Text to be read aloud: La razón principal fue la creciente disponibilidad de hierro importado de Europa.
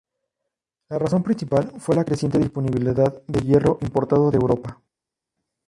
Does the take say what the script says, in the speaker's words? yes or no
yes